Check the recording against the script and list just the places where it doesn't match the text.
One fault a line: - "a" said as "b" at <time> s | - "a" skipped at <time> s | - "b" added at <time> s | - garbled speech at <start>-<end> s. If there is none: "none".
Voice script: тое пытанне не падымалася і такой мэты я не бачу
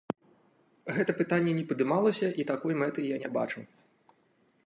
- "тое" said as "гэта" at 0.9 s